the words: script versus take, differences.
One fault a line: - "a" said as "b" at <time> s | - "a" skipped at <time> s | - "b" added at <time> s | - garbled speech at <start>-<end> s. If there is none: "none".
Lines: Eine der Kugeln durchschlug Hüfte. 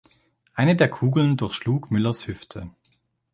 - "Müllers" added at 1.9 s